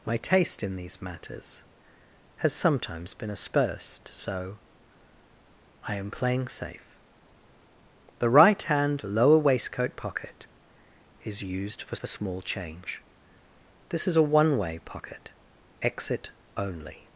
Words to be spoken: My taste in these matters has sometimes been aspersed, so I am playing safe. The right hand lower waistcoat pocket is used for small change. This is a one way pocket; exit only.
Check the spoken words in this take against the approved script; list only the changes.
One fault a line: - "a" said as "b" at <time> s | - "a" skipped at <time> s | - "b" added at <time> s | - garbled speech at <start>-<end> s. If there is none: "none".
- "for" added at 11.9 s